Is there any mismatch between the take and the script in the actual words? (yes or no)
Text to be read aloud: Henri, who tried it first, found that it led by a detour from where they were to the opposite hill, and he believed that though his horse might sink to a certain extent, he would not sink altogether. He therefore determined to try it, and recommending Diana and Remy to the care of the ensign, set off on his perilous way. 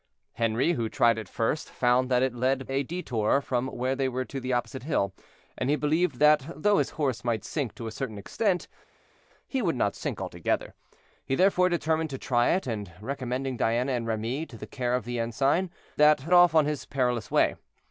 yes